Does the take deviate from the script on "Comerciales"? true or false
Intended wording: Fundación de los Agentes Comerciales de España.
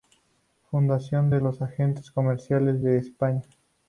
false